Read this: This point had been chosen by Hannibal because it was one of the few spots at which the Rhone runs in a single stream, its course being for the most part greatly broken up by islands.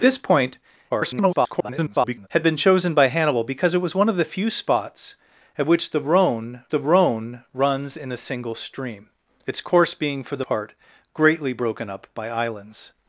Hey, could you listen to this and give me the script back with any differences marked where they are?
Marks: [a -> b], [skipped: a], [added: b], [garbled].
This point [garbled] had been chosen by Hannibal because it was one of the few spots at which the Rhone [added: the Rhone] runs in a single stream, its course being for the [skipped: most] part greatly broken up by islands.